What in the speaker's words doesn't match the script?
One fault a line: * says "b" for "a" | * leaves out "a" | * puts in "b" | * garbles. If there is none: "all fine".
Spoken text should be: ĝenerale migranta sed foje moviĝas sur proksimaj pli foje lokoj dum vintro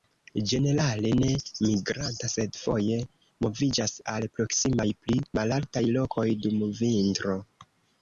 * puts in "ne"
* says "al" for "sur"
* says "malaltaj" for "foje"